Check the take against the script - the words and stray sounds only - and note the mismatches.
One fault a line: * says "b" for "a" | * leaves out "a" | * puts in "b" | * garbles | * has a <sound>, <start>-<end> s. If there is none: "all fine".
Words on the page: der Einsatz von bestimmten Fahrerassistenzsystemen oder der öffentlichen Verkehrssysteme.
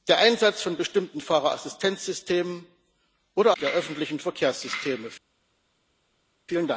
all fine